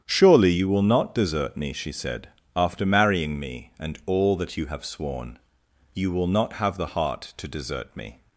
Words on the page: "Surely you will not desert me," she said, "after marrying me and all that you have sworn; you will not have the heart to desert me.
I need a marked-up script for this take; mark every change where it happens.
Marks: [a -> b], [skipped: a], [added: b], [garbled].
"Surely you will not desert me," she said, "after marrying me and all that you have sworn; you will not have the heart to desert me.